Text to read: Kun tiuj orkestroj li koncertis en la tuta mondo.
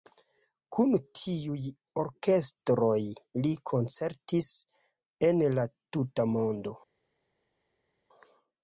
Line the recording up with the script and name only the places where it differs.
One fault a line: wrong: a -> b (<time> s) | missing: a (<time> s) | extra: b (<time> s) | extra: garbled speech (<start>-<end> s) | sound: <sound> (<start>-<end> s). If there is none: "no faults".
no faults